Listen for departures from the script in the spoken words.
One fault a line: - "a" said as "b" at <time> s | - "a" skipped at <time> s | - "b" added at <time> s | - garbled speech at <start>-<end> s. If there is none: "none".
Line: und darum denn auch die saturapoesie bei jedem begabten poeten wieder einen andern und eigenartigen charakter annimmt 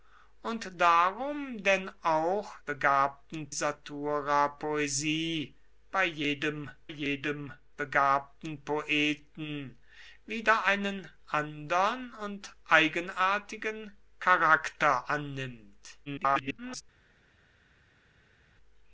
- "die" said as "begabten" at 2.7 s
- "jedem" added at 6.9 s
- garbled speech at 16.1-16.8 s